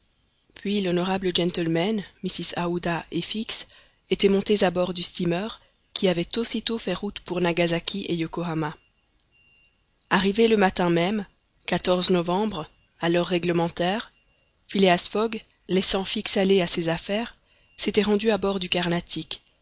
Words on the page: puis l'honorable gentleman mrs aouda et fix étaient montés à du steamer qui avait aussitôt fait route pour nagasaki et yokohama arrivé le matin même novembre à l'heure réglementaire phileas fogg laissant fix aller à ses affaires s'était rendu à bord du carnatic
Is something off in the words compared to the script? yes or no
yes